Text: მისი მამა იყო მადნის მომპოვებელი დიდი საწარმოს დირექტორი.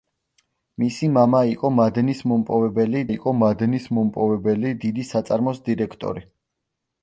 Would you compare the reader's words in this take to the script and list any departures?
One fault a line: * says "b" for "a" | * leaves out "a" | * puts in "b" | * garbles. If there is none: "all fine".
* puts in "იყო მადნის მომპოვებელი"